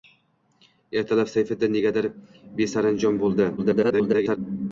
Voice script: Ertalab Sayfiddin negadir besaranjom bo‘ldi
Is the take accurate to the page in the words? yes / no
no